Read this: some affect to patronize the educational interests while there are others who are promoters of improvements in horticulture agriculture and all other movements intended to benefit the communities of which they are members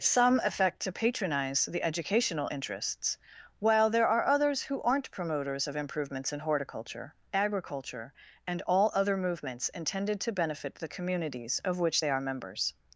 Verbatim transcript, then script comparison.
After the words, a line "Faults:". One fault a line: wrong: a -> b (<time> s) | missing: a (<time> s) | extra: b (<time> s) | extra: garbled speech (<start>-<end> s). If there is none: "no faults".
some affect to patronize the educational interests while there are others who aren't promoters of improvements in horticulture agriculture and all other movements intended to benefit the communities of which they are members
Faults:
wrong: are -> aren't (4.8 s)